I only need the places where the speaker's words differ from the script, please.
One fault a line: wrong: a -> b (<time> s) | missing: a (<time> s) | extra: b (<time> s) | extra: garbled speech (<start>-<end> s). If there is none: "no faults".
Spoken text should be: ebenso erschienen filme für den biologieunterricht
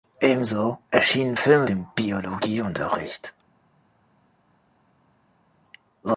missing: für (1.7 s)